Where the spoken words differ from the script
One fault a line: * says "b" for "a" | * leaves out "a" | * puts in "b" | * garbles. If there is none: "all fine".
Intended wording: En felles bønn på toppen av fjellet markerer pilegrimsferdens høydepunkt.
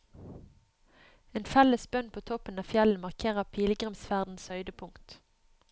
all fine